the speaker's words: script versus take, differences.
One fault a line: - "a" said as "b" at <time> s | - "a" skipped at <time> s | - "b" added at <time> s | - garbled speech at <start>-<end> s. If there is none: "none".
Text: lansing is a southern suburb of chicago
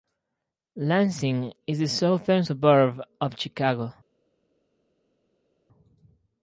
none